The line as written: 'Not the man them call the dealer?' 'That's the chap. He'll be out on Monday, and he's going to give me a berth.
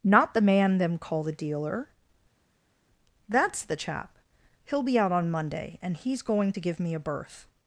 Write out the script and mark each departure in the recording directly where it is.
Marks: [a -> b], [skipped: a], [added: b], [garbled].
'Not the man them call the dealer?' 'That's the chap. He'll be out on Monday, and he's going to give me a berth.